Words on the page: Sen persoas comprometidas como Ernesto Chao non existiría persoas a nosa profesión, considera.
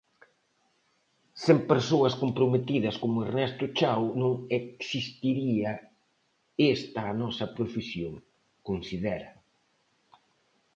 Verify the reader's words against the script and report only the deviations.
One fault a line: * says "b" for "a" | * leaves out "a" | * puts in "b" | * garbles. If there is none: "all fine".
* says "esta" for "persoas"